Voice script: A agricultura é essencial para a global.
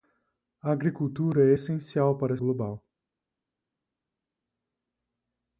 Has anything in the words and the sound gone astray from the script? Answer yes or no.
no